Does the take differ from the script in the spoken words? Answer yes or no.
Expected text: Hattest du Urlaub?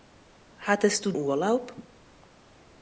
no